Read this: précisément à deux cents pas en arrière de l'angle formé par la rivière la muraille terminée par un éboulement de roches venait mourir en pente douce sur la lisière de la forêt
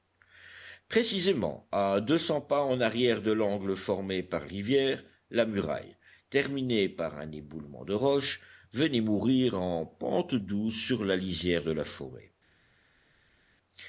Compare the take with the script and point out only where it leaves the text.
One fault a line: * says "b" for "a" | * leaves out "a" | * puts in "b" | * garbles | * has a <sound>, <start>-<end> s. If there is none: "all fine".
* leaves out "la"